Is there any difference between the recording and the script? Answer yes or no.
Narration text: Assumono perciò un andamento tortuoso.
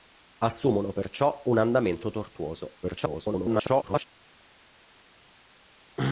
yes